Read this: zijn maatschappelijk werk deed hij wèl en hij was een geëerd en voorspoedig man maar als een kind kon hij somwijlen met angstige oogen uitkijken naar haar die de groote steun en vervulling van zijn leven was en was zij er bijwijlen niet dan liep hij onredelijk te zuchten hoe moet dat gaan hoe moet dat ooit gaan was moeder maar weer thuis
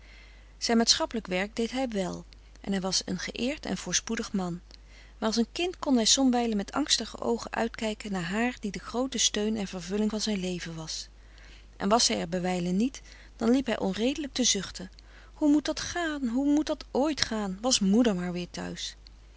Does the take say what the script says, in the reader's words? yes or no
yes